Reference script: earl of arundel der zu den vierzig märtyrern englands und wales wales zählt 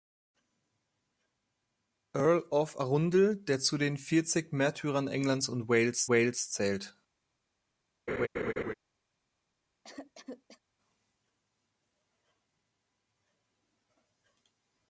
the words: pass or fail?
pass